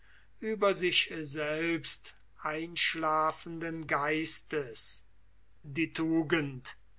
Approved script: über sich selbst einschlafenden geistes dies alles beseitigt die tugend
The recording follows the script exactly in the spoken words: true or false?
false